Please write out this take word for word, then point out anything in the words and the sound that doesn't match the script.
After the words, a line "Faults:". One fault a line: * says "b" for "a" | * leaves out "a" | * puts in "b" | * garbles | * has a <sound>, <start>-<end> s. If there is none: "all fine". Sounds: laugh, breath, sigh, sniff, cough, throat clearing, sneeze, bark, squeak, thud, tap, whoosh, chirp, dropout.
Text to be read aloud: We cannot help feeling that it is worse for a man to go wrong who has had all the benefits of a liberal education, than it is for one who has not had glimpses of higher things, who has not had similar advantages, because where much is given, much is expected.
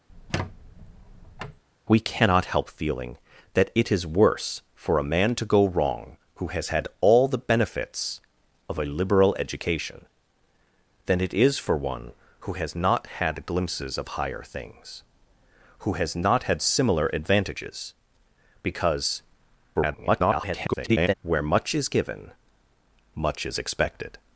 We cannot help feeling that it is worse for a man to go wrong who has had all the benefits of a liberal education, than it is for one who has not had glimpses of higher things, who has not had similar advantages, because [garbled] where much is given, much is expected.
Faults:
* has a squeak, 0.1-1.6 s
* garbles